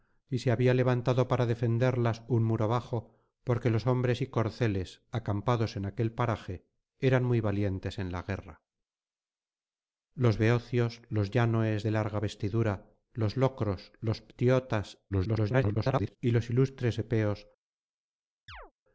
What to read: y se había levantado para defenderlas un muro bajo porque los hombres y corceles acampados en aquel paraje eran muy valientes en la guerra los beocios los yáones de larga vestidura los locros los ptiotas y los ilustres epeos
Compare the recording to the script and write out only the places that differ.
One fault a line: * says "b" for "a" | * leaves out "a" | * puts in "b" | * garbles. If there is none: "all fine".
* garbles